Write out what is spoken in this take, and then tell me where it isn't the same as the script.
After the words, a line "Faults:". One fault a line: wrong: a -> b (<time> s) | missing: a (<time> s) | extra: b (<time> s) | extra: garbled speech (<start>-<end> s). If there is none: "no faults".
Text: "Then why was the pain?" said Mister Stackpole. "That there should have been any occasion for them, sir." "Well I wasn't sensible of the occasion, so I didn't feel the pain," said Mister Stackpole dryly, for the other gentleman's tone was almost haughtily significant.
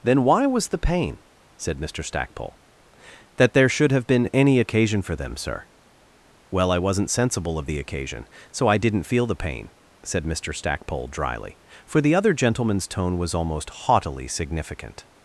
"Then why was the pain?" said Mister Stackpole. "That there should have been any occasion for them, sir." "Well I wasn't sensible of the occasion, so I didn't feel the pain," said Mister Stackpole dryly, for the other gentleman's tone was almost haughtily significant.
Faults:
no faults